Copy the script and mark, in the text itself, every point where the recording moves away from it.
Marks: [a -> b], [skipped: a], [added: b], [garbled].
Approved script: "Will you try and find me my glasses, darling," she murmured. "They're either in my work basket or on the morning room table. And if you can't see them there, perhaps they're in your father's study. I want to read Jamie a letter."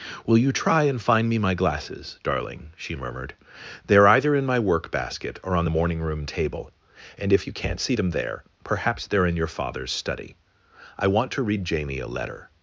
"Will you try and find me my glasses, darling," she murmured. "They're either in my work basket or on the morning room table. And if you can't see them there, perhaps they're in your father's study. I want to read Jamie a letter."